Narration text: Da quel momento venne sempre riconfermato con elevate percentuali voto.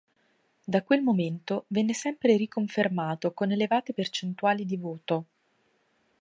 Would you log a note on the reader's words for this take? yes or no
yes